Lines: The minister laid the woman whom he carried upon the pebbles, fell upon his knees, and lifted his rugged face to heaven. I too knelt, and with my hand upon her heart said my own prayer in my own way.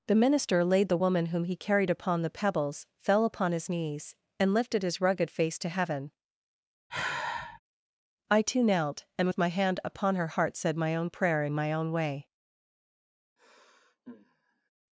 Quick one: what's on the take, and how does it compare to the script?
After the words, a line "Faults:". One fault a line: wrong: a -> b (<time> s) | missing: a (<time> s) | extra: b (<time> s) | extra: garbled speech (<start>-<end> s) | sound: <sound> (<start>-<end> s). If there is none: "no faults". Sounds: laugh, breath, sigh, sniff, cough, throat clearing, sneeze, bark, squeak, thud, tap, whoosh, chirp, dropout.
The minister laid the woman whom he carried upon the pebbles, fell upon his knees, and lifted his rugged face to heaven. I too knelt, and with my hand upon her heart said my own prayer in my own way.
Faults:
sound: sigh (6.9-7.6 s)
sound: sigh (13.4-14.7 s)